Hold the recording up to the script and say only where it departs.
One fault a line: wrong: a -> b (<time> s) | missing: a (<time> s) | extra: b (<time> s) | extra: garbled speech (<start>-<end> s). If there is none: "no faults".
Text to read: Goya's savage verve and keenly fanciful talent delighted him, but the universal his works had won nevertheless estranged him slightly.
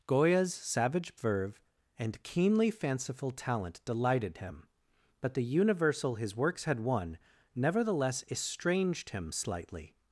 no faults